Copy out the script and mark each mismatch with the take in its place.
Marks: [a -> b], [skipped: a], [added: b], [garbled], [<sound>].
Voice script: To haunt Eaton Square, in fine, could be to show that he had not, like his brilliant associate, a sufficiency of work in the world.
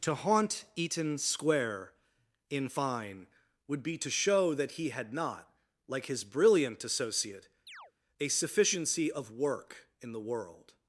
To haunt Eaton Square, in fine, [could -> would] be to show that he had not, like his brilliant associate, [chirp] a sufficiency of work in the world.